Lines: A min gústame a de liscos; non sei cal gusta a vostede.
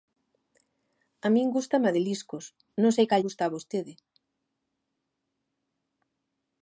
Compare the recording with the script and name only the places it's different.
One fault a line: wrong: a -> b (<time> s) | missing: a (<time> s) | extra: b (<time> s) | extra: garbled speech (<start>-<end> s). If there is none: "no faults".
no faults